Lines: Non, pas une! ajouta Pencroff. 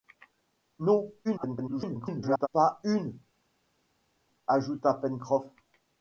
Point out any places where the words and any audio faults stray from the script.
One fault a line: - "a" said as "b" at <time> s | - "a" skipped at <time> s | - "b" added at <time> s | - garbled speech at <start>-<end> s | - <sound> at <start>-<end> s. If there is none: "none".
- garbled speech at 1.2-2.5 s